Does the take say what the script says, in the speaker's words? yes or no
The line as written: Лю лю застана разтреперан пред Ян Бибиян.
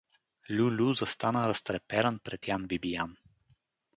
yes